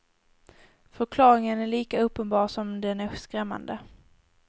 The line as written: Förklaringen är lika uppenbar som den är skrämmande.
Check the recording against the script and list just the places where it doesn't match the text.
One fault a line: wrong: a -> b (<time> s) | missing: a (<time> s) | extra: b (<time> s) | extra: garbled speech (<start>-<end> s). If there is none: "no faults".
no faults